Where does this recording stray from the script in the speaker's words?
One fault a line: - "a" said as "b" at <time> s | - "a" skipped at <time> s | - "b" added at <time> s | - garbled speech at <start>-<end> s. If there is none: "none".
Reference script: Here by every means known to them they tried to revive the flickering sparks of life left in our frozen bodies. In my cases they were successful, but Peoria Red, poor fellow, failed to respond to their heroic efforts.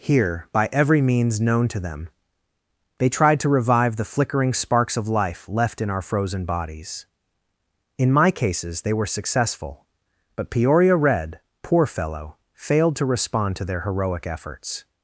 none